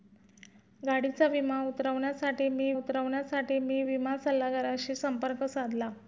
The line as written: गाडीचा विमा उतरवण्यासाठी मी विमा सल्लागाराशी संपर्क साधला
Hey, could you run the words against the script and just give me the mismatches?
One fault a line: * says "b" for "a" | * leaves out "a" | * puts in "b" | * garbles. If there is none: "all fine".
* puts in "उतरवण्यासाठी मी"